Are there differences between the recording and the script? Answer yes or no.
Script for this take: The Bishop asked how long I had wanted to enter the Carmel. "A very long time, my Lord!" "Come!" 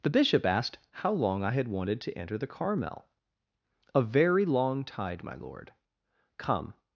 yes